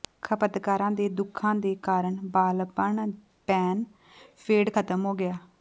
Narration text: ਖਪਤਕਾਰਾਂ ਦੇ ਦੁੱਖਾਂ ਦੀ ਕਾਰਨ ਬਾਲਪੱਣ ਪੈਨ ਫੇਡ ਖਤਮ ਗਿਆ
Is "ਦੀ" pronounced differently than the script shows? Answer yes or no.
yes